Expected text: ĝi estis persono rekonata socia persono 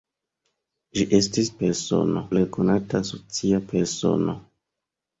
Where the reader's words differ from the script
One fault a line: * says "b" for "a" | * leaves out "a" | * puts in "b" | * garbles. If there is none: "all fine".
all fine